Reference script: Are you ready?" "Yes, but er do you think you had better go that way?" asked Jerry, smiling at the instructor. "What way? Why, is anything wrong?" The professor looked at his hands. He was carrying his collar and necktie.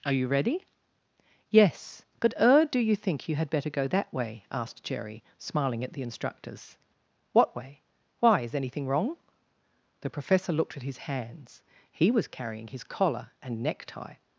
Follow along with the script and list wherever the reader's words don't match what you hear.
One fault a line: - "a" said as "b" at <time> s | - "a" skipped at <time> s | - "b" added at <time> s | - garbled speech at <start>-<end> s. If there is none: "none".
- "instructor" said as "instructors" at 6.0 s